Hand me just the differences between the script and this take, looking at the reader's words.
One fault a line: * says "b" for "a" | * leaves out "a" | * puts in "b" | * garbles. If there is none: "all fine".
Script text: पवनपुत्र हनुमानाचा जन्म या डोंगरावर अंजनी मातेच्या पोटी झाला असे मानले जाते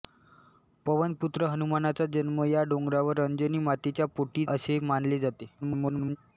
* leaves out "झाला"
* garbles